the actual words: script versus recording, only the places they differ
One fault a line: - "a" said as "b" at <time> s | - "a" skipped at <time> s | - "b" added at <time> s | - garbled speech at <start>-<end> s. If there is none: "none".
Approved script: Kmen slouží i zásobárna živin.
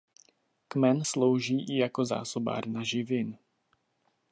- "jako" added at 1.8 s